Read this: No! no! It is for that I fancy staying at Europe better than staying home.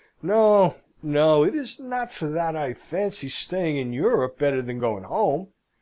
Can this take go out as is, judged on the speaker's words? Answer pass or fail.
fail